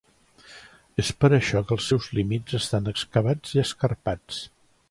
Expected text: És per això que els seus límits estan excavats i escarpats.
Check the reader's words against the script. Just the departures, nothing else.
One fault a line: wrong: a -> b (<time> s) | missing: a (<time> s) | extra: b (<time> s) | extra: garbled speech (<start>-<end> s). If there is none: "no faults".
no faults